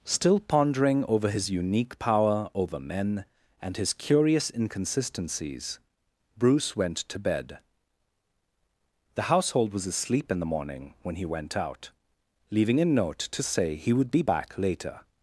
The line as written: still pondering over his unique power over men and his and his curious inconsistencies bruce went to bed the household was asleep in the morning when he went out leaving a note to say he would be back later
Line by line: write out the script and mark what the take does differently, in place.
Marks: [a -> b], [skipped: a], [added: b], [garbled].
still pondering over his unique power over men and his [skipped: and his] curious inconsistencies bruce went to bed the household was asleep in the morning when he went out leaving a note to say he would be back later